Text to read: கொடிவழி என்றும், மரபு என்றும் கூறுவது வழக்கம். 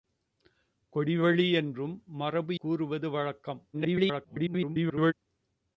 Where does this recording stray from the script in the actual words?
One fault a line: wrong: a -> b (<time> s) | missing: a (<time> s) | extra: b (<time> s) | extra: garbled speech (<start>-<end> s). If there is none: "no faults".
missing: என்றும் (2.6 s)
extra: garbled speech (3.7-5.1 s)